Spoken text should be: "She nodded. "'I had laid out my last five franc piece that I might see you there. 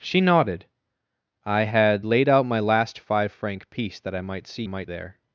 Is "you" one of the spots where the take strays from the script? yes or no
yes